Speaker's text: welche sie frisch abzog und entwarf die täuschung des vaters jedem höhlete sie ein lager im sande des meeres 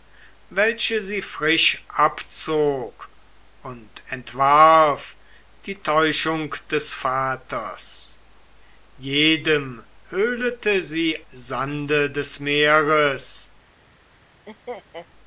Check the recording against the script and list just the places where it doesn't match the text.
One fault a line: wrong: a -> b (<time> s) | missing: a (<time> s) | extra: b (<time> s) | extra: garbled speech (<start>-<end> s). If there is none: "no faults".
missing: ein lager im (11.2 s)